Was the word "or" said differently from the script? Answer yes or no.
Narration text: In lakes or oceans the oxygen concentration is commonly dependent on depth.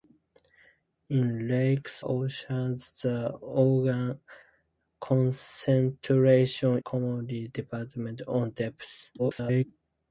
yes